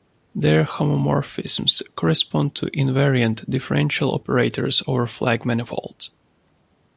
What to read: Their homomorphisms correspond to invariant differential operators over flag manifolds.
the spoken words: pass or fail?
pass